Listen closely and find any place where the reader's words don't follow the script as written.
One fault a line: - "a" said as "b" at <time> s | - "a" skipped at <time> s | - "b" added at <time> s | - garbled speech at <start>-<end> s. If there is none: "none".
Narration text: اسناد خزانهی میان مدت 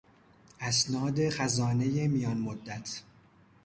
none